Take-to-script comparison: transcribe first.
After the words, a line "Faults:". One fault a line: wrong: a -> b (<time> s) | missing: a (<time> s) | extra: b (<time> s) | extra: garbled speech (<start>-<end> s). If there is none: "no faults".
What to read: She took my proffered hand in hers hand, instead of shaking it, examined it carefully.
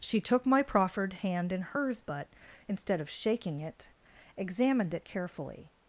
She took my proffered hand in hers but, instead of shaking it, examined it carefully.
Faults:
wrong: hand -> but (2.0 s)